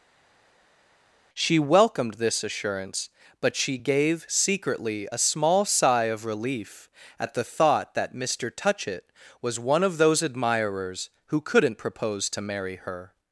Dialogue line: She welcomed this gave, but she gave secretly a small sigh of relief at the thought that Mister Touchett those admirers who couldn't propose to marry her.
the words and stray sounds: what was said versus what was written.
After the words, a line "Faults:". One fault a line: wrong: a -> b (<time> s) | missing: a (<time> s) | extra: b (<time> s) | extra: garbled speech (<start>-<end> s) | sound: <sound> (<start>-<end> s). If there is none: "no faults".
She welcomed this assurance, but she gave secretly a small sigh of relief at the thought that Mister Touchett was one of those admirers who couldn't propose to marry her.
Faults:
wrong: gave -> assurance (2.4 s)
extra: was one of (9.4 s)